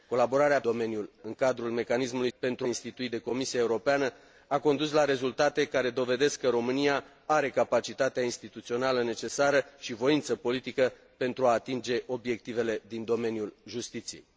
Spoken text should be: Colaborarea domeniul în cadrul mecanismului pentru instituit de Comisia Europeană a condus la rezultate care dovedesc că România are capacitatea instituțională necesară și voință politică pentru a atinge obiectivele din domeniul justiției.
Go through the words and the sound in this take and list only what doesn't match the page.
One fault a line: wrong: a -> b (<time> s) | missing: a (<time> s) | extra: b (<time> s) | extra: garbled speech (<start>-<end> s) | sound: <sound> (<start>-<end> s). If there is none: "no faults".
no faults